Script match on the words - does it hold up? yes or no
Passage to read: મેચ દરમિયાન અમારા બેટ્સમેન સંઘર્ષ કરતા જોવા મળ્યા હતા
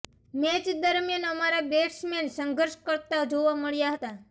yes